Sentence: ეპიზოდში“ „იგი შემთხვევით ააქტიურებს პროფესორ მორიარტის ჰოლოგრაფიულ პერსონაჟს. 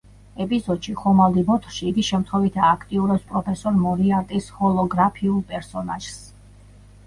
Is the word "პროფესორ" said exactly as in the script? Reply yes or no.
yes